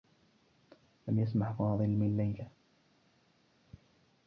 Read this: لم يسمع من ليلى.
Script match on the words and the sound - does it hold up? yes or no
no